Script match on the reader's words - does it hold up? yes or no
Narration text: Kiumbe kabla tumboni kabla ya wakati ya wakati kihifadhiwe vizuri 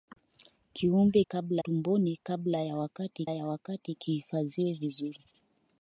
yes